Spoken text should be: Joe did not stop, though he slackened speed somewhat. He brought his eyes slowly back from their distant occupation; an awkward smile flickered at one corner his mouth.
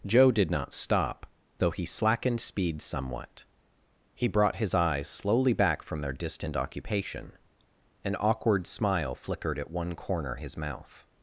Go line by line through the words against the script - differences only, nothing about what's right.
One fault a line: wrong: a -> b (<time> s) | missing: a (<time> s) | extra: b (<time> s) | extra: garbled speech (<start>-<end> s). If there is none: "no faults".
no faults